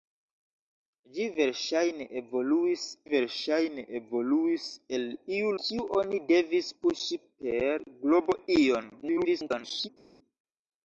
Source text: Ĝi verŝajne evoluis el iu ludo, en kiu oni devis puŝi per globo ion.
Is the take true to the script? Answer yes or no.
no